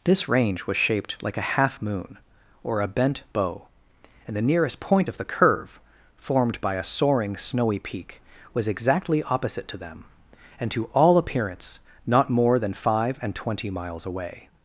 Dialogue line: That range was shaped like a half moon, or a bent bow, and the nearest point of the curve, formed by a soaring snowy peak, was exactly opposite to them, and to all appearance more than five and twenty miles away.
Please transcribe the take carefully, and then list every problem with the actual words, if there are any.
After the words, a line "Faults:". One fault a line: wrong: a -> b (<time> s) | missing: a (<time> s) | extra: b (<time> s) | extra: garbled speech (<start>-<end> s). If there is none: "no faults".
This range was shaped like a half moon, or a bent bow, and the nearest point of the curve, formed by a soaring snowy peak, was exactly opposite to them, and to all appearance not more than five and twenty miles away.
Faults:
wrong: That -> This (0.0 s)
extra: not (12.1 s)